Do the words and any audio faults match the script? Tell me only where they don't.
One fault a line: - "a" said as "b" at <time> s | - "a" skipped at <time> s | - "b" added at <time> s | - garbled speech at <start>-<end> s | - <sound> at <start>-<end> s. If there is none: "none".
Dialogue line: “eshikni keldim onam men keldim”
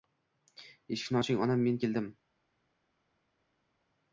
- "keldim" said as "oching" at 1.2 s